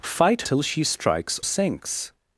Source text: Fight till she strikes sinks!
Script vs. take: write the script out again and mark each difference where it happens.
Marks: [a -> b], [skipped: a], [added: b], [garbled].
Fight till she strikes sinks!